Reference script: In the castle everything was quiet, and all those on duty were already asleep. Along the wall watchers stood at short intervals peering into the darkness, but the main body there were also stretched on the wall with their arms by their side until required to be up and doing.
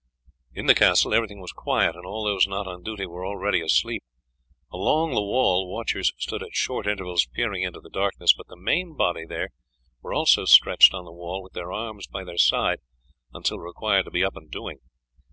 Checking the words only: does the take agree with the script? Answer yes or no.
no